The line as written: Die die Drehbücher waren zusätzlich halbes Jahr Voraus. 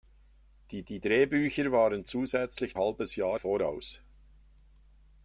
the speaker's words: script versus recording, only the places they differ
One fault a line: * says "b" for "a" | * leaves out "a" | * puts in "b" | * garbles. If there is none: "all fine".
all fine